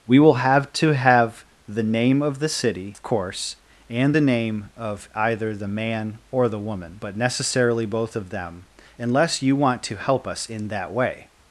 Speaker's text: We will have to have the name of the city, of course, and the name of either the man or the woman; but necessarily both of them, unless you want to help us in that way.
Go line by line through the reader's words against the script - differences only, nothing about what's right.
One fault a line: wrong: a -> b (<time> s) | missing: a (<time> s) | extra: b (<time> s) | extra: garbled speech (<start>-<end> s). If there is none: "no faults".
no faults